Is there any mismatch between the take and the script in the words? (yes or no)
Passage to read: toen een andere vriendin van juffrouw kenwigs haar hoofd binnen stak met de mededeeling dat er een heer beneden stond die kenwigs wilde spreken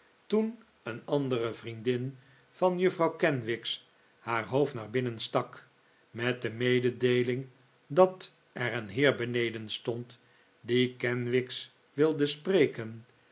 yes